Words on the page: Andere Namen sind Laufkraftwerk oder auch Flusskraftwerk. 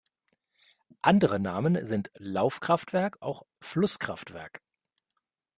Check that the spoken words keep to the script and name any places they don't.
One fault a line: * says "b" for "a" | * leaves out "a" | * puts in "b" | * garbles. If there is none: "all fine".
* leaves out "oder"